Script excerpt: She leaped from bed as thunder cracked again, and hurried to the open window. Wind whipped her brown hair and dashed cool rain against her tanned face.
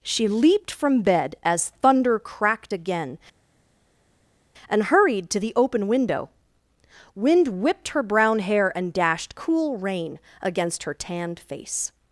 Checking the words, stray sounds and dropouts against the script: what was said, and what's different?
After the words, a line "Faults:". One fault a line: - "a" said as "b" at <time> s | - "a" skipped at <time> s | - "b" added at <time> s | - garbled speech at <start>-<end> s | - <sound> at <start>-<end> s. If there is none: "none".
She leaped from bed as thunder cracked again, and hurried to the open window. Wind whipped her brown hair and dashed cool rain against her tanned face.
Faults:
none